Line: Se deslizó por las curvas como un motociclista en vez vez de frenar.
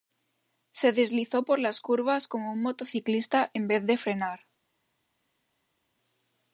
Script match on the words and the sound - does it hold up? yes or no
no